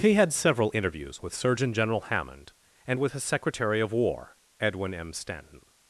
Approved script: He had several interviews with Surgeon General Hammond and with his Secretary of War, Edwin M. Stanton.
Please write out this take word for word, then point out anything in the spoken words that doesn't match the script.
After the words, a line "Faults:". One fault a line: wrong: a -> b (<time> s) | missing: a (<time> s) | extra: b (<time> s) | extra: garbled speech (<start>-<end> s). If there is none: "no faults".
He had several interviews with Surgeon General Hammond and with his Secretary of War, Edwin M. Stanton.
Faults:
no faults